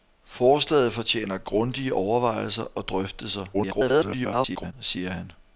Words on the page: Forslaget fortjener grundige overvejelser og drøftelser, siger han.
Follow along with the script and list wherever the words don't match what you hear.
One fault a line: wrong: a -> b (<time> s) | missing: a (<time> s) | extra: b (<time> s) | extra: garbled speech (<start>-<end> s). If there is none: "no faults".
extra: garbled speech (3.5-4.7 s)